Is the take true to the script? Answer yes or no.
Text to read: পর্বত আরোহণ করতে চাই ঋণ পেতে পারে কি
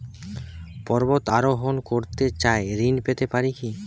yes